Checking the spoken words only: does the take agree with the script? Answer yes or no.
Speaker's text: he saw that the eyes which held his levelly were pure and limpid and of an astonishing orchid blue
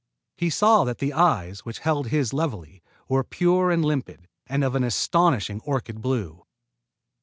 yes